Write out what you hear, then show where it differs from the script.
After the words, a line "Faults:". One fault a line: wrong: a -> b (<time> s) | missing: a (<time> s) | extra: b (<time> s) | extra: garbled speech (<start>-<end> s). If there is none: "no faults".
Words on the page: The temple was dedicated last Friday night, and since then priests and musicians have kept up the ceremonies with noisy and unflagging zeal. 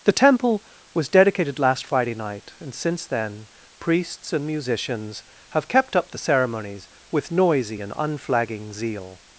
The temple was dedicated last Friday night, and since then priests and musicians have kept up the ceremonies with noisy and unflagging zeal.
Faults:
no faults